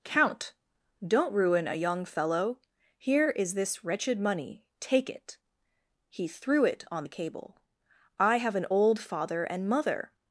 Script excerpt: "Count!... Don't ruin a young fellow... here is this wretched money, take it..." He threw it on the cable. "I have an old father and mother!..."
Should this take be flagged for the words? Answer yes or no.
no